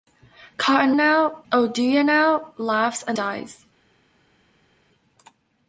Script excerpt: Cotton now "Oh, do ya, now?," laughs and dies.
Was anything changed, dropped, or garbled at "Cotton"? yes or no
no